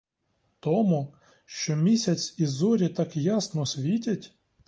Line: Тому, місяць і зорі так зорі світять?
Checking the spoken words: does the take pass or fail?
fail